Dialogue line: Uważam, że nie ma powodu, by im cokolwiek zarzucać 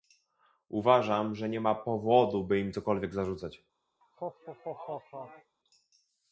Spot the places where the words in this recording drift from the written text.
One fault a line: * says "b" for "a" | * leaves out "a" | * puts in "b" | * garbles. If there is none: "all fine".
all fine